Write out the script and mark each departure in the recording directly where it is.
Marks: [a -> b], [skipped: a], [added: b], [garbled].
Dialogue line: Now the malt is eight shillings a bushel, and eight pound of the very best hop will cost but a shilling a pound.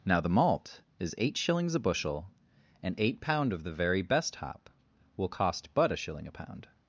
Now the malt is eight shillings a bushel, and eight pound of the very best hop will cost but a shilling a pound.